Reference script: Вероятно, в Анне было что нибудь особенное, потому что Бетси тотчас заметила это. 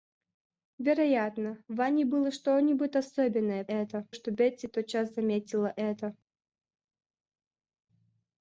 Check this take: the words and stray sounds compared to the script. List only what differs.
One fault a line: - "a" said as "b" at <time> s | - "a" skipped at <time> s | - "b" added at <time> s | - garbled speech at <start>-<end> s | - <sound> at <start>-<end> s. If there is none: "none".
- "потому" said as "это" at 3.7 s